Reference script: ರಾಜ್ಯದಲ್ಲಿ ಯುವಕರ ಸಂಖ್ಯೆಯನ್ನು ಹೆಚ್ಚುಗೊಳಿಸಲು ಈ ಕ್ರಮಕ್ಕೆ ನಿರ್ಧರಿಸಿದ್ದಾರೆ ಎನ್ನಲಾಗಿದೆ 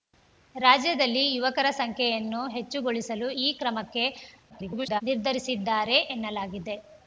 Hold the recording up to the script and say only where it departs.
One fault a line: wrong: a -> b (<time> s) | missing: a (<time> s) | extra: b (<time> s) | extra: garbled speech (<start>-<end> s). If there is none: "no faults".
extra: garbled speech (4.5-5.0 s)